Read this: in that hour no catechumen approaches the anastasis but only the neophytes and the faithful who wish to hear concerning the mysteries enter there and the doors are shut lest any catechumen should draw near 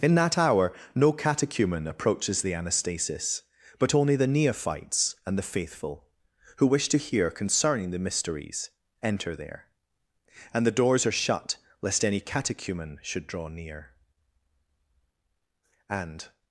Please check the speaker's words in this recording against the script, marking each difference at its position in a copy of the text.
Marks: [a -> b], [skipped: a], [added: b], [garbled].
in that hour no catechumen approaches the anastasis but only the neophytes and the faithful who wish to hear concerning the mysteries enter there and the doors are shut lest any catechumen should draw near [added: and]